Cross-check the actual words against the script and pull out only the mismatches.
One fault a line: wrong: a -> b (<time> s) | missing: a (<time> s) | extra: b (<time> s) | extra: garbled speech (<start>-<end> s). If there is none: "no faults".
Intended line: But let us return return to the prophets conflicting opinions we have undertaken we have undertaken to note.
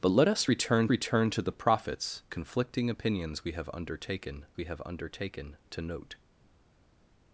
no faults